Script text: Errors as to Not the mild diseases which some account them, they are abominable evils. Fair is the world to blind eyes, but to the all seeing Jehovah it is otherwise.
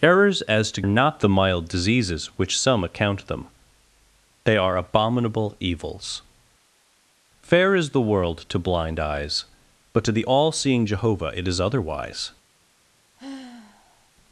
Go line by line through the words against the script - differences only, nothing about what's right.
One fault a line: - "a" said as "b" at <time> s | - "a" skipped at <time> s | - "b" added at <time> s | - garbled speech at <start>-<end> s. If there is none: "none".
none